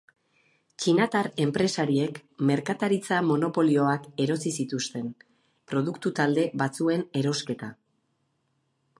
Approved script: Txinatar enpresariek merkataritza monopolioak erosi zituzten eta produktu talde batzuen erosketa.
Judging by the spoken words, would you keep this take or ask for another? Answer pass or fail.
fail